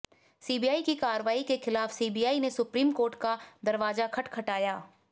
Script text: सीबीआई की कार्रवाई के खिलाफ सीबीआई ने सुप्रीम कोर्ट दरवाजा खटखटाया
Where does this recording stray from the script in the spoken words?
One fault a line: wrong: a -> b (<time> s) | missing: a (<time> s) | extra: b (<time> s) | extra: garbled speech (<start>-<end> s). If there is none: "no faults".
extra: का (3.2 s)